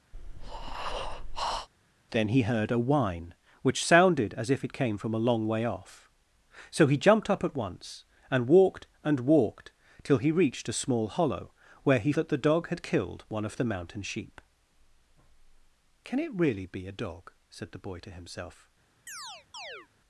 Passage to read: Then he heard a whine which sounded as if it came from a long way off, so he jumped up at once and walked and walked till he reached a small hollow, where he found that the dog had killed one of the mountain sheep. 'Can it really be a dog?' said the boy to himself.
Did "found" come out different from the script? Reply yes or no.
yes